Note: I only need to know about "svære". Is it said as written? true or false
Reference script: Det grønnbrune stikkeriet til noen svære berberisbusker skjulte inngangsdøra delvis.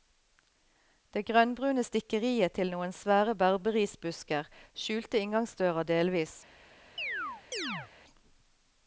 true